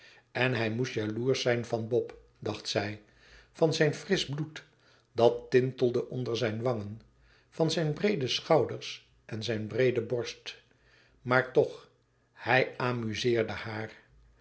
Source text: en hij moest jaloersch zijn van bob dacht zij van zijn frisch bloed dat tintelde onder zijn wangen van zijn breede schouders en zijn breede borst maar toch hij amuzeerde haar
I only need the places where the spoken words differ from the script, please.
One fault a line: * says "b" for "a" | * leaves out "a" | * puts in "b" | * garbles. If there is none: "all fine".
all fine